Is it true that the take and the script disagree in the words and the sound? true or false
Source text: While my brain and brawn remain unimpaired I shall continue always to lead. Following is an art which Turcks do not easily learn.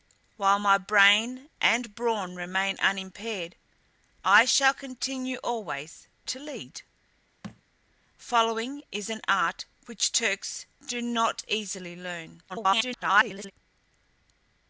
true